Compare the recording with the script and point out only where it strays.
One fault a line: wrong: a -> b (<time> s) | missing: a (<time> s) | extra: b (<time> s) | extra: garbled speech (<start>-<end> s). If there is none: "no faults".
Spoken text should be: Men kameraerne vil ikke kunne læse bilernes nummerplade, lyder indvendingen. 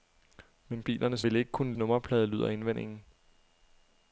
wrong: kameraerne -> bilernes (0.8 s)
missing: læse bilernes (1.7 s)